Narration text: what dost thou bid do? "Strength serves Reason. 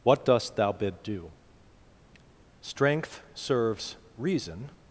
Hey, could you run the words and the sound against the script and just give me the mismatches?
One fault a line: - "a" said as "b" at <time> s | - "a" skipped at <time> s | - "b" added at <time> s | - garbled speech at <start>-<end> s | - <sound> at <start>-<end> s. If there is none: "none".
none